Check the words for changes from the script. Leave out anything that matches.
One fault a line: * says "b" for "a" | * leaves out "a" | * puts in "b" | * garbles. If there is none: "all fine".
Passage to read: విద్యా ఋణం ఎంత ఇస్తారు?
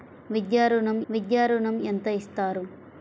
* puts in "విద్యా ఋణం"